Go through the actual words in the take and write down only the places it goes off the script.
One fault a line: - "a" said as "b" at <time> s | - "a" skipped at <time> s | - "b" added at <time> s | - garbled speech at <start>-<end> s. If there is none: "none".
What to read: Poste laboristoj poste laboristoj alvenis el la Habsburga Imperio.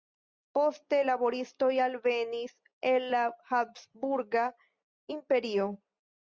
- "poste laboristoj" skipped at 1.7 s